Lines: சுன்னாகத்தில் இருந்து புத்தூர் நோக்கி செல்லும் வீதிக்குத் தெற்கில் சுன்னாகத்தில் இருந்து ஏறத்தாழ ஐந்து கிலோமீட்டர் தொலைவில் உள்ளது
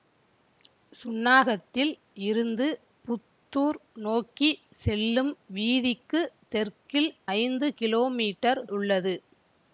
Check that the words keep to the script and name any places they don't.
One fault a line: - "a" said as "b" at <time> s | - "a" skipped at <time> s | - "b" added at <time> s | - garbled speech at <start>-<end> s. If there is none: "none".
- "சுன்னாகத்தில் இருந்து ஏறத்தாழ" skipped at 7.1 s
- "தொலைவில்" skipped at 8.6 s